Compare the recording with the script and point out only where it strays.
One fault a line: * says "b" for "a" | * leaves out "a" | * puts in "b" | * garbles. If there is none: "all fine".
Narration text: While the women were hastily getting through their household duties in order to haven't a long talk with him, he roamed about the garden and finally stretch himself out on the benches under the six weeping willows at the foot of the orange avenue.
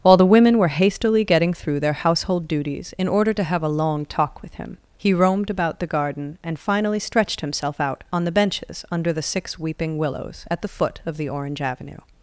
* says "have" for "haven't"
* says "stretched" for "stretch"